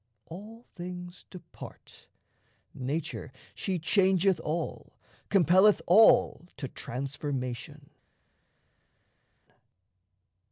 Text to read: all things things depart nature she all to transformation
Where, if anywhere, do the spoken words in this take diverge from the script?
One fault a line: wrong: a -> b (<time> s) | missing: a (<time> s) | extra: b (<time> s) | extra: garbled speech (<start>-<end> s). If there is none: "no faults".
missing: things (1.3 s)
extra: changeth all compelleth (3.8 s)